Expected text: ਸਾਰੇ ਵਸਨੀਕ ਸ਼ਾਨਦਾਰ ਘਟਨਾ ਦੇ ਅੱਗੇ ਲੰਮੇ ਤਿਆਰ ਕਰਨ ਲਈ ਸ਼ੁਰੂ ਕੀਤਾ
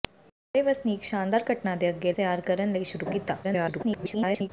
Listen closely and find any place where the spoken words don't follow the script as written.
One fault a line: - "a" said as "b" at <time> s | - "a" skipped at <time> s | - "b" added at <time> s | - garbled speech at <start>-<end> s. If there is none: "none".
- "ਲੰਮੇ" skipped at 2.1 s
- garbled speech at 3.4-4.5 s